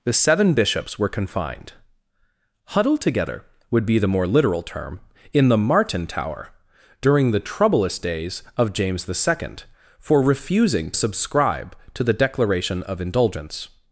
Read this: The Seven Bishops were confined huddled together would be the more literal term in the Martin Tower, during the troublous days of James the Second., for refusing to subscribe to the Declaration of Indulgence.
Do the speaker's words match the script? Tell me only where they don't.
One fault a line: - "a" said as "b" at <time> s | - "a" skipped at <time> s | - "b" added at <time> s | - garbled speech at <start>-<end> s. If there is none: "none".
- "to" skipped at 10.9 s